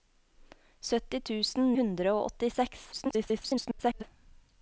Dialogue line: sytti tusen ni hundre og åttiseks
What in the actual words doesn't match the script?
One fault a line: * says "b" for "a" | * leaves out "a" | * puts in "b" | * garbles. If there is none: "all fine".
* leaves out "ni"
* garbles